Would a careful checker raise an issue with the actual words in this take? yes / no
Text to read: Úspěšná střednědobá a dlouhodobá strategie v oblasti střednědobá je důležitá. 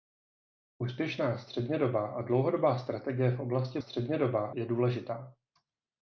no